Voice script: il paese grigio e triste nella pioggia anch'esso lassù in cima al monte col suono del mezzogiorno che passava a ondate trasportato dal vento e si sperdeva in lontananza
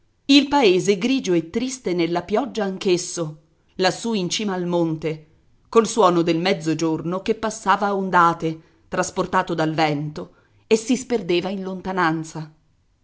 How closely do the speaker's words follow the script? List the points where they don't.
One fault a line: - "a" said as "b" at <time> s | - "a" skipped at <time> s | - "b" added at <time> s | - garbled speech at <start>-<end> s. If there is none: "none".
none